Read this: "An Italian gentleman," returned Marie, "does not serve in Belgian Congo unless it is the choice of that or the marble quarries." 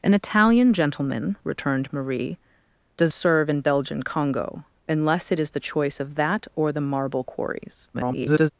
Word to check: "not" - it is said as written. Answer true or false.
false